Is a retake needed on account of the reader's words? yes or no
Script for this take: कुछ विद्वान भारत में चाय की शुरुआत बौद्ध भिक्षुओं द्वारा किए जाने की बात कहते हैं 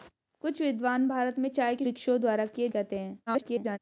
yes